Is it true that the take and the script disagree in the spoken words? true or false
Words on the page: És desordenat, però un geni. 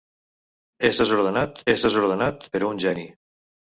true